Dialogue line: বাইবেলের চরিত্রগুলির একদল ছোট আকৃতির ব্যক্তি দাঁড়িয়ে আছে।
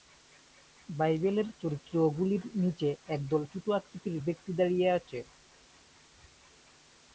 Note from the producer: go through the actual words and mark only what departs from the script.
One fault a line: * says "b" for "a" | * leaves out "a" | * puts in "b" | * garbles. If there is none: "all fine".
* puts in "নিচে"